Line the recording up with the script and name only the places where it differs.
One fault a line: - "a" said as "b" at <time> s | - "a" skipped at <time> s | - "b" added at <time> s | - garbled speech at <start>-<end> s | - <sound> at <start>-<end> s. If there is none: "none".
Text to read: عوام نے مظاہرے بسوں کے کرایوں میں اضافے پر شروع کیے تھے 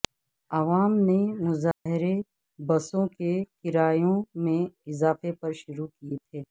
- dropout at 1.7-1.9 s